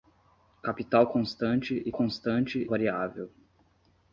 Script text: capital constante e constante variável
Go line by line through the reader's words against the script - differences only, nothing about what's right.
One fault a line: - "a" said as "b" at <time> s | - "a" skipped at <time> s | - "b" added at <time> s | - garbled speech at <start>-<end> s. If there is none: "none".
none